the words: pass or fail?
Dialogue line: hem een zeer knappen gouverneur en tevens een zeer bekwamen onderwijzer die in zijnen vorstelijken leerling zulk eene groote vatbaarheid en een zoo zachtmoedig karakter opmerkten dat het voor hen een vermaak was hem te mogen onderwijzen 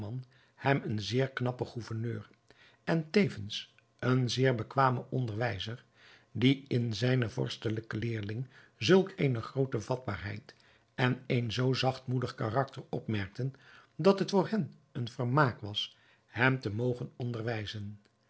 pass